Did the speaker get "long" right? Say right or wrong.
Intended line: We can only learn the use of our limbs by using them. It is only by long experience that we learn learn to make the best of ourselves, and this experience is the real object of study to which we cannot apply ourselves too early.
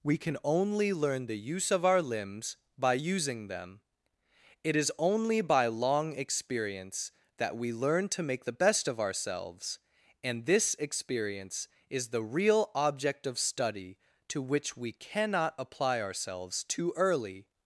right